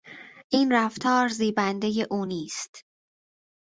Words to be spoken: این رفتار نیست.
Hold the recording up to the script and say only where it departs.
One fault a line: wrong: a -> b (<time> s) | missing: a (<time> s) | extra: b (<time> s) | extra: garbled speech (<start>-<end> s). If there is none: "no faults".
extra: زیبندهی او (1.3 s)